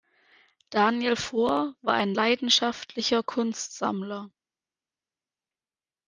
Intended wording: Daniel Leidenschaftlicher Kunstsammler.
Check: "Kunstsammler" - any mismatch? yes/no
no